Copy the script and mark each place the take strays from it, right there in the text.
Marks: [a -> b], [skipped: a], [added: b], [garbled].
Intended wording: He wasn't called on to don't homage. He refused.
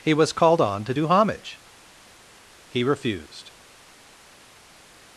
He [wasn't -> was] called on to [don't -> do] homage. He refused.